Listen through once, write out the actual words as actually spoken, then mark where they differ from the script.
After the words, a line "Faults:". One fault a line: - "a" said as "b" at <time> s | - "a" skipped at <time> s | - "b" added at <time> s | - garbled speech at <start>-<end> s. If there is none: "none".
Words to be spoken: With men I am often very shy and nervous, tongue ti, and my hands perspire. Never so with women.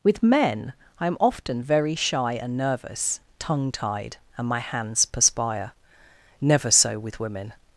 With men I am often very shy and nervous, tongue tied, and my hands perspire. Never so with women.
Faults:
- "ti" said as "tied" at 3.7 s